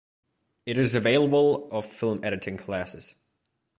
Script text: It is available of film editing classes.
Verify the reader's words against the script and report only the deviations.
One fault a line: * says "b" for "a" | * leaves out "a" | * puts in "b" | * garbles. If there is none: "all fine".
all fine